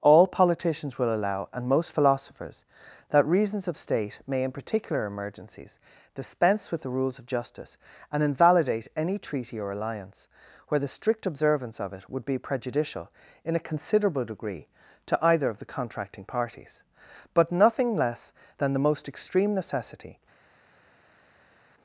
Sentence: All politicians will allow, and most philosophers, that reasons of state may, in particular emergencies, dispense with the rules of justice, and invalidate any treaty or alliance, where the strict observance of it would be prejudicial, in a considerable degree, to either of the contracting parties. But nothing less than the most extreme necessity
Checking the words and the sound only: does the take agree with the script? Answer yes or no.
yes